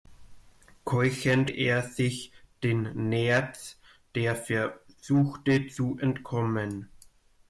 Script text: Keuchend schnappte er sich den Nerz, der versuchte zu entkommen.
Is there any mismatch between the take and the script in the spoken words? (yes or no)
yes